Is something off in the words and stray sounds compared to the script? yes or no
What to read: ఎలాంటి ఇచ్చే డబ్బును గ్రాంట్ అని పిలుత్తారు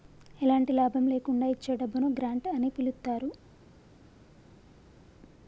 yes